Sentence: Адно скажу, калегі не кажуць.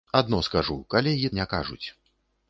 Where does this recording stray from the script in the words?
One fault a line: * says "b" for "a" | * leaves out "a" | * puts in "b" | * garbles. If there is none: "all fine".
all fine